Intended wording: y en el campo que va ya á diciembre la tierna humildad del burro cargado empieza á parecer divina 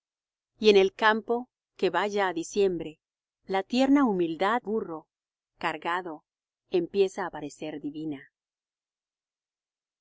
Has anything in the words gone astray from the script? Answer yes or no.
yes